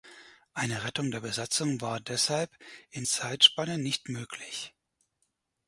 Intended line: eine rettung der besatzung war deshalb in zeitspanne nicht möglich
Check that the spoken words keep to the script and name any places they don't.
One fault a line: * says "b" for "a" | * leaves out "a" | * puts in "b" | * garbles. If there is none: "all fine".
all fine